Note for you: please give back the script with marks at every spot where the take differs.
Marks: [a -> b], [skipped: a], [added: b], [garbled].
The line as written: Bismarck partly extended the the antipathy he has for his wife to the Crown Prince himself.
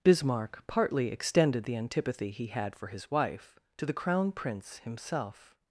Bismarck partly extended the [skipped: the] antipathy he [has -> had] for his wife to the Crown Prince himself.